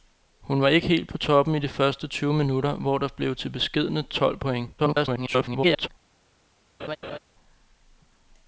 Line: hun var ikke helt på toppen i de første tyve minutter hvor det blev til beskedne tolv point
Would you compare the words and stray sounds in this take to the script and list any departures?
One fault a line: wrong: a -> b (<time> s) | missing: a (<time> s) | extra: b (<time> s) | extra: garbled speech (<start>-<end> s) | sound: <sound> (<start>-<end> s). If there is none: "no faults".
extra: garbled speech (4.8-5.9 s)
sound: laugh (6.8-7.2 s)